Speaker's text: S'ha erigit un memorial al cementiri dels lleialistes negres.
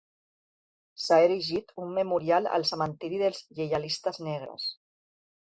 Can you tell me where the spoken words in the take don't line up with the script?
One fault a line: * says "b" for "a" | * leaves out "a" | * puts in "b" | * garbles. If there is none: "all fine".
all fine